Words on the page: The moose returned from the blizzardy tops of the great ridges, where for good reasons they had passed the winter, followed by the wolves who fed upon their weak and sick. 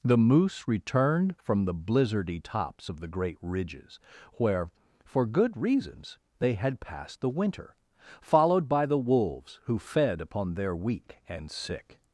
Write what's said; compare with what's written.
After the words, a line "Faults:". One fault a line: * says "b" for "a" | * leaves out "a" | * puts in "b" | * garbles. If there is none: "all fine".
The moose returned from the blizzardy tops of the great ridges, where for good reasons they had passed the winter, followed by the wolves who fed upon their weak and sick.
Faults:
all fine